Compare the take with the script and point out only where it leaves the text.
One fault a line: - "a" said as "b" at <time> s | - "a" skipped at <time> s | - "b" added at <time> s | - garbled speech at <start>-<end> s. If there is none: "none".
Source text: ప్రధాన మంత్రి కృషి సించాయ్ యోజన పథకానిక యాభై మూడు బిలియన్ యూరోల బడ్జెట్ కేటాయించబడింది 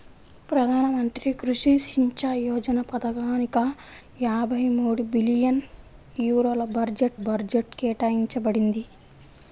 - "బడ్జెట్" added at 7.2 s